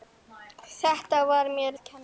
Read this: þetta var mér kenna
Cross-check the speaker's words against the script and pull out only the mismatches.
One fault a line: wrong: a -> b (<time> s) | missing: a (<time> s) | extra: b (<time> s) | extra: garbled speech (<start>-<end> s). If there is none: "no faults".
no faults